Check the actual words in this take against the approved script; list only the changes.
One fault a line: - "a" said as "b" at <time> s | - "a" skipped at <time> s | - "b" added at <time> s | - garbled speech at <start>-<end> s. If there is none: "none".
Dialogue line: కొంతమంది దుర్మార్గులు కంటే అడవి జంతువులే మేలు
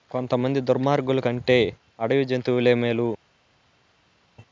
none